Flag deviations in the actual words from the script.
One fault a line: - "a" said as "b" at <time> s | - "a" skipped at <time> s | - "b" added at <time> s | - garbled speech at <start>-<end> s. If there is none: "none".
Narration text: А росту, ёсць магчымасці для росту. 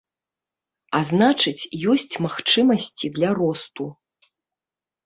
- "росту" said as "значыць" at 1.1 s